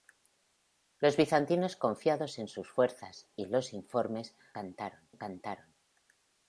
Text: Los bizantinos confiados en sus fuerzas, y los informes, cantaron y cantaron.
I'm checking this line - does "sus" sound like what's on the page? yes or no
yes